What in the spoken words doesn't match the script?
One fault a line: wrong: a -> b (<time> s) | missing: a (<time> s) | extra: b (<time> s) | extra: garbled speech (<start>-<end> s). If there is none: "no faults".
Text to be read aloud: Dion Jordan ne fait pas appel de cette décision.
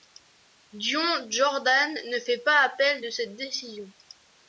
no faults